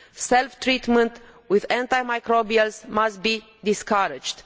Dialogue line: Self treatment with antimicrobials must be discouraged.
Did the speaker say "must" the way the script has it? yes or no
yes